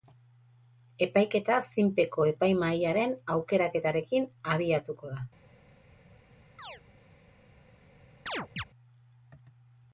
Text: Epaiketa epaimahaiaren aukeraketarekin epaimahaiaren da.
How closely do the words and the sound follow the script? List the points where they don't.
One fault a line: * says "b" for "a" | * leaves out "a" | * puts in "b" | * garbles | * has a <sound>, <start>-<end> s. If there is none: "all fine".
* puts in "zinpeko"
* says "abiatuko" for "epaimahaiaren"
* has a chirp, 6.6-6.8 s
* has a chirp, 8.3-8.6 s